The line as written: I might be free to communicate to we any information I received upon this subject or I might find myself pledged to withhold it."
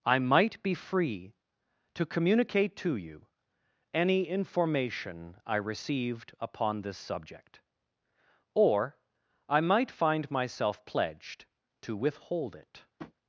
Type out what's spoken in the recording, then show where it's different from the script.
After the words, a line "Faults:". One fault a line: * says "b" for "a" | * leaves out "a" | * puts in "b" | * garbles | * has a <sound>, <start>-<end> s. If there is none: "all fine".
I might be free to communicate to you any information I received upon this subject or I might find myself pledged to withhold it."
Faults:
* says "you" for "we"
* has a tap, 13.0-13.1 s